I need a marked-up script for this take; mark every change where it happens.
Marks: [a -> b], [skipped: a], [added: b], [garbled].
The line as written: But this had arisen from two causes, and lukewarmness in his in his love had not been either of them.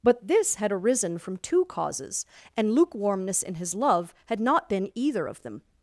But this had arisen from two causes, and lukewarmness in his [skipped: in his] love had not been either of them.